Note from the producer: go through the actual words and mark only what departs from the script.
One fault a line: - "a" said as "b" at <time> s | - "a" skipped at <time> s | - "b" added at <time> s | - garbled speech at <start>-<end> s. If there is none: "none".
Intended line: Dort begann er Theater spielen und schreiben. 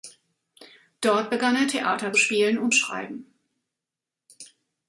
none